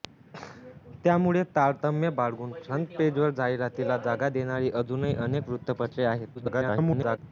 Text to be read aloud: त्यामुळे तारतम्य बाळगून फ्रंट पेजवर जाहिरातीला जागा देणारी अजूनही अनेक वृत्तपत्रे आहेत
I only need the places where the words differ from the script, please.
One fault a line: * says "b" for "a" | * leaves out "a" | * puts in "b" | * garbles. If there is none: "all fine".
* garbles